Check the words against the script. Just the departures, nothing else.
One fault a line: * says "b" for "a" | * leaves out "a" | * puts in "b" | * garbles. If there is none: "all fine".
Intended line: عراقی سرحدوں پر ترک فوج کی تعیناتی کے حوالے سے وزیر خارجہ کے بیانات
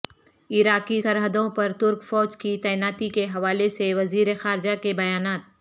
all fine